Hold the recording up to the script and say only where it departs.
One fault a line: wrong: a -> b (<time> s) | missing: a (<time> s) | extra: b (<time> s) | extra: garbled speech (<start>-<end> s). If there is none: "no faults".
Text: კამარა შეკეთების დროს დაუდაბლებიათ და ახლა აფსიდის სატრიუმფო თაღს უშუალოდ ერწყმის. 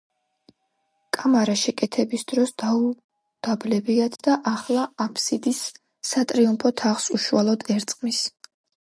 no faults